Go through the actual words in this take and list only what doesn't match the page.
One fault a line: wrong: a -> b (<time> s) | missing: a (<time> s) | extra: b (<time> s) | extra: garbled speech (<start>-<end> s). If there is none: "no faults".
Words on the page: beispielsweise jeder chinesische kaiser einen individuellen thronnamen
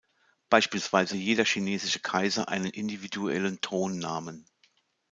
no faults